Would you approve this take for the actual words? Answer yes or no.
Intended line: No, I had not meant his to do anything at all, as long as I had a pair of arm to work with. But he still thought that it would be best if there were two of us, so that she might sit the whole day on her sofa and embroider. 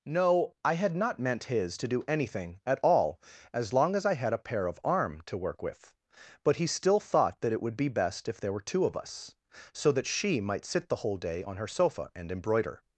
yes